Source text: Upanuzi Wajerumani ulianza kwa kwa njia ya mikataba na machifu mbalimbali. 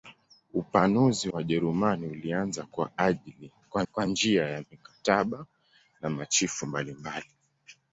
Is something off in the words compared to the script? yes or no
no